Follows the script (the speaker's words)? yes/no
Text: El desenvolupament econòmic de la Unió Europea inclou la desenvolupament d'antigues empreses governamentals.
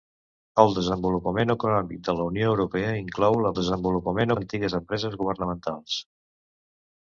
yes